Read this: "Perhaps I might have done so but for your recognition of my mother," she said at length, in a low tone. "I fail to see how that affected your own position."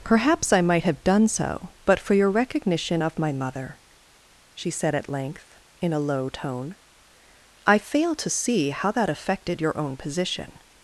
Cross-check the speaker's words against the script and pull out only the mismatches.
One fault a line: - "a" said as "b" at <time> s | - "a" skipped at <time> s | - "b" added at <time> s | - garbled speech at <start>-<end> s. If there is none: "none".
none